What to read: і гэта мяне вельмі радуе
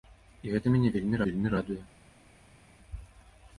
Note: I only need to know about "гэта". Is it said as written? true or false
true